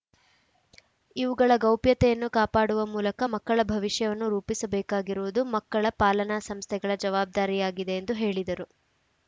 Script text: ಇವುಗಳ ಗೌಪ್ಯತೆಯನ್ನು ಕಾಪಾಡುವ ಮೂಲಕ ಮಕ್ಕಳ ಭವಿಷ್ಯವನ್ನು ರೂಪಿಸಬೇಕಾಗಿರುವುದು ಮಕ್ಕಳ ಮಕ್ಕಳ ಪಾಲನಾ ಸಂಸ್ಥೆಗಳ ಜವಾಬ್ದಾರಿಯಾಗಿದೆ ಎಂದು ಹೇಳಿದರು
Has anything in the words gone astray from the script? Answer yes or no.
yes